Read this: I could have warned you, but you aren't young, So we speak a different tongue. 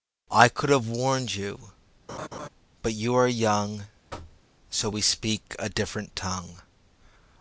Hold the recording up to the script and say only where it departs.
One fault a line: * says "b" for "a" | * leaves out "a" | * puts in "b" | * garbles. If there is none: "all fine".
* says "are" for "aren't"